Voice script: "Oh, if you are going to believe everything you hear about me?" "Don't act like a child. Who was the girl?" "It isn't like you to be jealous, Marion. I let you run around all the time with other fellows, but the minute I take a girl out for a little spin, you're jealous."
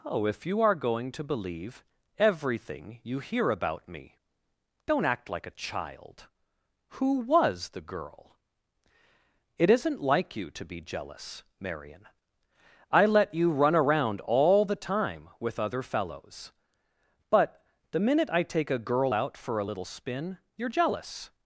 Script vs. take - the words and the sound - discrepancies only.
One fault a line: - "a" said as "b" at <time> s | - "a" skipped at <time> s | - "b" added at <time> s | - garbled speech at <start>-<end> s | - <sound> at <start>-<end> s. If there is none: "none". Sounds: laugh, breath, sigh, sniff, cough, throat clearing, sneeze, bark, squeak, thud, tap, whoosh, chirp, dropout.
none